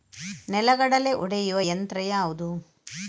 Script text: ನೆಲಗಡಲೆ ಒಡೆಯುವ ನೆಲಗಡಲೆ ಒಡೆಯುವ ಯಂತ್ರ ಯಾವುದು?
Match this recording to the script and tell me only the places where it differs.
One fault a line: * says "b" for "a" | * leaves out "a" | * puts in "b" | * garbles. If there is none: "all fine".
* leaves out "ನೆಲಗಡಲೆ ಒಡೆಯುವ"